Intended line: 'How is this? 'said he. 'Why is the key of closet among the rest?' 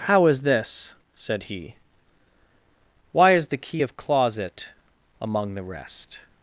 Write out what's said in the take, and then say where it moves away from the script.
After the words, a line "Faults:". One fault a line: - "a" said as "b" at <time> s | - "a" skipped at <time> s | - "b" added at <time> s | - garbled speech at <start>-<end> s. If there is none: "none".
'How is this? 'said he. 'Why is the key of closet among the rest?'
Faults:
none